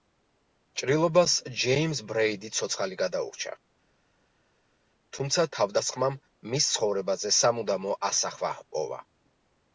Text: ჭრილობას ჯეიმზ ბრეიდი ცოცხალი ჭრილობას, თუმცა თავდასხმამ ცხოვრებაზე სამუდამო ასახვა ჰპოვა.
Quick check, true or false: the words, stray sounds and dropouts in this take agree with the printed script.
false